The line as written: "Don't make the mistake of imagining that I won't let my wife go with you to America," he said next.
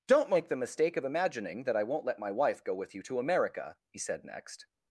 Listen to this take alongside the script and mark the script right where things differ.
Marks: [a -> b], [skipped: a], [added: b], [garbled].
"Don't make the mistake of imagining that I won't let my wife go with you to America," he said next.